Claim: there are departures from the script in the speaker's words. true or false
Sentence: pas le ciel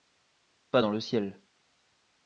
true